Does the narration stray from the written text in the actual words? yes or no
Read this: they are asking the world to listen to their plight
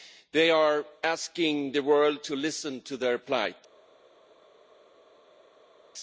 no